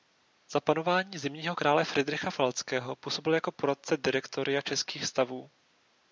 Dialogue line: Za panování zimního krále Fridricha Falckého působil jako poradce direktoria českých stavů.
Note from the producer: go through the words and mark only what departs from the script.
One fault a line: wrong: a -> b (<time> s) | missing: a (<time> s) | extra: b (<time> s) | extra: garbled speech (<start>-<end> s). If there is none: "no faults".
no faults